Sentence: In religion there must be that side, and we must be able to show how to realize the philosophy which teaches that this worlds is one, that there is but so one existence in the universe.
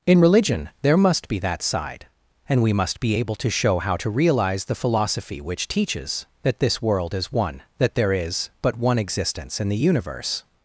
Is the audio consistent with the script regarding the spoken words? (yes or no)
no